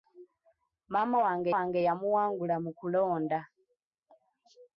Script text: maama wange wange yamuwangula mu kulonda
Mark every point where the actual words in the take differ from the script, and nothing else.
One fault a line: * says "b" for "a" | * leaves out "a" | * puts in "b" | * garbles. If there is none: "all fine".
all fine